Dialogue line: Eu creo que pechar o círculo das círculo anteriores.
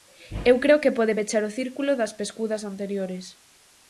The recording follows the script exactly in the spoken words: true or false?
false